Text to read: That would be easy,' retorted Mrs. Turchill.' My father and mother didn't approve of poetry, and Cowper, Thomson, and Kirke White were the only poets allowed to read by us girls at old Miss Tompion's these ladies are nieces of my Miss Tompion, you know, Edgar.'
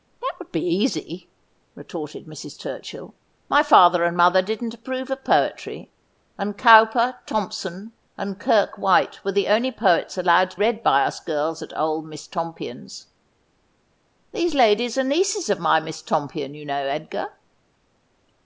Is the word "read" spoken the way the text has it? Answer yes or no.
yes